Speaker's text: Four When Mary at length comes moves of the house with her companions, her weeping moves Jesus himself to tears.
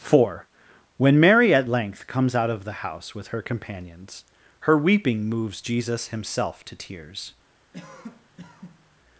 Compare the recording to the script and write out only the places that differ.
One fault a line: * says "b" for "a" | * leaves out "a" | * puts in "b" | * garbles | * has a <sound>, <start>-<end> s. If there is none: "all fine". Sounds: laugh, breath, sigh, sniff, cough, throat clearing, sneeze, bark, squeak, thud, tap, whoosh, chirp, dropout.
* says "out" for "moves"
* has a cough, 7.7-9.0 s